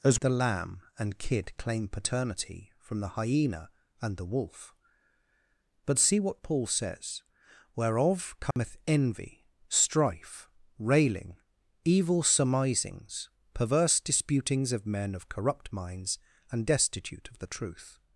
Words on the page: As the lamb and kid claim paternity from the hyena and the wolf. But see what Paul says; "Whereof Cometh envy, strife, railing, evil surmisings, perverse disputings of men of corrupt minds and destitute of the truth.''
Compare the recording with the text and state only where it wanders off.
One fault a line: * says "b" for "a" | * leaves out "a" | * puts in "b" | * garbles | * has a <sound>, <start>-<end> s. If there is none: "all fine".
* has a dropout, 8.5-8.6 s